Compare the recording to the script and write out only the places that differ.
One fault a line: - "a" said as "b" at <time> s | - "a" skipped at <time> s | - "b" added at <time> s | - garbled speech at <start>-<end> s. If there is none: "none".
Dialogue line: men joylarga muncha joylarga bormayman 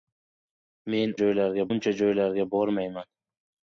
none